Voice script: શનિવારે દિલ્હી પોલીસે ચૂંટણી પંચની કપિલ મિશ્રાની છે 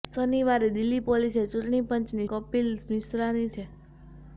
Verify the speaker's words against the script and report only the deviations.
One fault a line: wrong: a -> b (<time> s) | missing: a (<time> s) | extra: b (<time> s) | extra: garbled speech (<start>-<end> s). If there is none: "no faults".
no faults